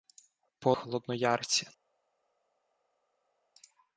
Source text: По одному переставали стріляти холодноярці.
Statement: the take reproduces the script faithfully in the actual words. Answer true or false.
false